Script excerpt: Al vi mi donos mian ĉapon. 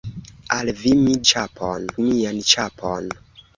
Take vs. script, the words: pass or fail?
fail